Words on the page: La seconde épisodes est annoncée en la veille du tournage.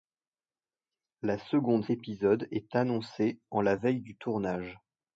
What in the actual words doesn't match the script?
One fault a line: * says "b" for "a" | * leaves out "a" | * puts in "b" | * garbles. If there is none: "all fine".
all fine